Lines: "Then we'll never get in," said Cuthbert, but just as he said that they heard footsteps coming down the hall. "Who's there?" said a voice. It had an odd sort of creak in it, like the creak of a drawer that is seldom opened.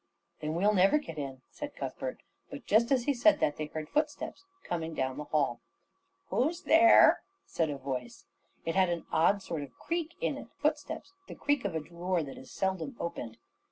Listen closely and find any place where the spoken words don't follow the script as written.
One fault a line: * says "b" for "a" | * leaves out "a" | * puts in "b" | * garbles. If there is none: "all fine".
* says "footsteps" for "like"